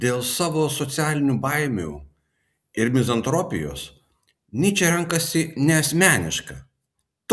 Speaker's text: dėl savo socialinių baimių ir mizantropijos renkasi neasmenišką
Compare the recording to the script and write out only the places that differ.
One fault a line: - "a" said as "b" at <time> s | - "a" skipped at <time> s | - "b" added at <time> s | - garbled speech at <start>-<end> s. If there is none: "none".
- "nyčė" added at 4.6 s